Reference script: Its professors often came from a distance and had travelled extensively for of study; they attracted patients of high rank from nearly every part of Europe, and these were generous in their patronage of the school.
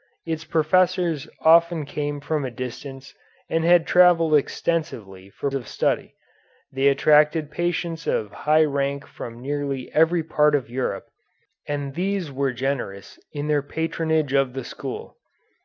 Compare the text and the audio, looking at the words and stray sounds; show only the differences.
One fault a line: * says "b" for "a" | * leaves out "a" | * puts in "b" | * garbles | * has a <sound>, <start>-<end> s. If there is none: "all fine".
all fine